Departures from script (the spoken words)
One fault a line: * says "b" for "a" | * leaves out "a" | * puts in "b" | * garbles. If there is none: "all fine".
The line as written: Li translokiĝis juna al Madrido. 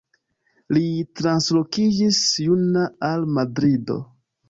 all fine